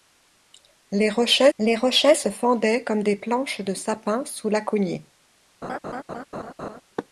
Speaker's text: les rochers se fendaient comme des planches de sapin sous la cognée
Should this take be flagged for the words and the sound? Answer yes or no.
yes